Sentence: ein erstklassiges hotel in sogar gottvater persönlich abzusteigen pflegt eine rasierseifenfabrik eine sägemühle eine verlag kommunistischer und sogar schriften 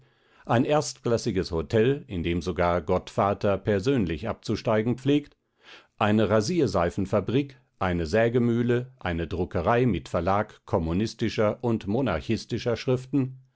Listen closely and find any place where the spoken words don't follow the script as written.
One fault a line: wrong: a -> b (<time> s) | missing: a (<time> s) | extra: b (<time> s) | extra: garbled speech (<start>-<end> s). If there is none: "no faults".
extra: dem (2.2 s)
extra: druckerei mit (9.3 s)
wrong: sogar -> monarchistischer (11.9 s)